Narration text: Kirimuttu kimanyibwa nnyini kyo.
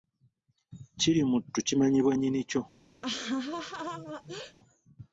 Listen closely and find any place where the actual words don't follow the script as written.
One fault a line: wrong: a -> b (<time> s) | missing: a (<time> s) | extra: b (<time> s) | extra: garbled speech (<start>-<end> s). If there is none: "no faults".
no faults